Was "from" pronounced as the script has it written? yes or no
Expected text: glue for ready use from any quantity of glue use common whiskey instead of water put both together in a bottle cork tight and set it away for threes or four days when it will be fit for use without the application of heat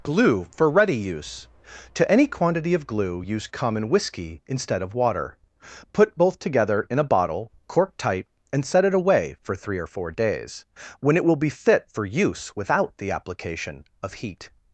no